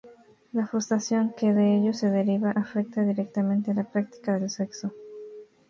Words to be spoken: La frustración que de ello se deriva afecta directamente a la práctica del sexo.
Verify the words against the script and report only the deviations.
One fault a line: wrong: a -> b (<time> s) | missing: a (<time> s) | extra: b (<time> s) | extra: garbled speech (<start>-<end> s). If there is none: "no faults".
no faults